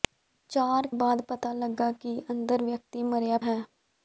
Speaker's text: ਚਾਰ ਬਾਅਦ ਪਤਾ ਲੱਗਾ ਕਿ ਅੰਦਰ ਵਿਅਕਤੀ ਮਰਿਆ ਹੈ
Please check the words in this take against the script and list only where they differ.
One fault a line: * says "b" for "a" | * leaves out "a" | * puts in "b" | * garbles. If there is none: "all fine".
all fine